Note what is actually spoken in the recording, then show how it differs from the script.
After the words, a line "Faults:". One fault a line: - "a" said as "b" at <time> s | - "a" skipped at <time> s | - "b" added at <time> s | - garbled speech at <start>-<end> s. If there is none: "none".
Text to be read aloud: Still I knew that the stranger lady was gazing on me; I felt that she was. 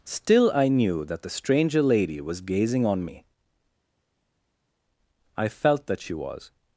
Still I knew that the stranger lady was gazing on me; I felt that she was.
Faults:
none